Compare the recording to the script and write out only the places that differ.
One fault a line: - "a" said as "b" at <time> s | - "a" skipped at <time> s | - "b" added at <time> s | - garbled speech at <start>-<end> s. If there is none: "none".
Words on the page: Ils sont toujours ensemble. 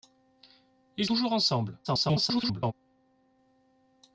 - "sont" skipped at 1.1 s
- garbled speech at 1.8-2.7 s